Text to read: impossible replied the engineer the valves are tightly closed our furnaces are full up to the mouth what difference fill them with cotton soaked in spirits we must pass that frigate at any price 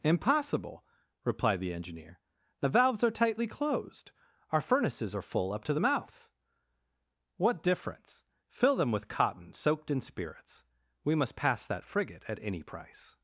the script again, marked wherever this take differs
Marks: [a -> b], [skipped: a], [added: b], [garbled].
impossible replied the engineer the valves are tightly closed our furnaces are full up to the mouth what difference fill them with cotton soaked in spirits we must pass that frigate at any price